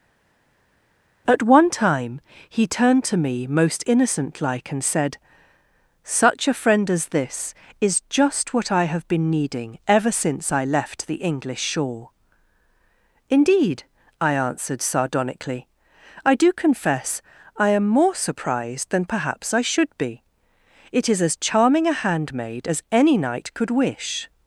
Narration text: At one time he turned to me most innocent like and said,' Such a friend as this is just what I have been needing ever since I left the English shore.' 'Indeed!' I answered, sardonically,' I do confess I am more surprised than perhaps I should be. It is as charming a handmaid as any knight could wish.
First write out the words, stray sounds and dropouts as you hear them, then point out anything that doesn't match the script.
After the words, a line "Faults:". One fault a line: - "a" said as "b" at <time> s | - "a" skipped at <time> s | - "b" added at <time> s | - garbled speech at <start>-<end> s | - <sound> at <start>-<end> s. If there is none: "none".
At one time he turned to me most innocent like and said,' Such a friend as this is just what I have been needing ever since I left the English shore.' 'Indeed!' I answered, sardonically,' I do confess I am more surprised than perhaps I should be. It is as charming a handmaid as any knight could wish.
Faults:
none